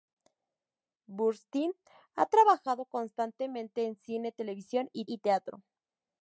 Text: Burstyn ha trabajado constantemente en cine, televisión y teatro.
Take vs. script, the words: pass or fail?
fail